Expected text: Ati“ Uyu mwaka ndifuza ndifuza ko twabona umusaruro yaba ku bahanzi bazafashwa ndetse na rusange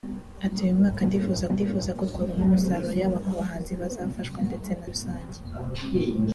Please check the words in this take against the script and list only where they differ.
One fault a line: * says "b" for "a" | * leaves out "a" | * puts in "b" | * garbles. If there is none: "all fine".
all fine